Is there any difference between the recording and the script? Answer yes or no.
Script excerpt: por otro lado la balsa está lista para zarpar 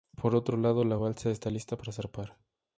no